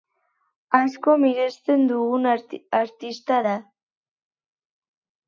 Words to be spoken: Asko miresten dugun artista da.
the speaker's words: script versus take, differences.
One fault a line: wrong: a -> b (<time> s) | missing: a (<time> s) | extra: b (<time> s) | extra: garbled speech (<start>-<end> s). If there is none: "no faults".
no faults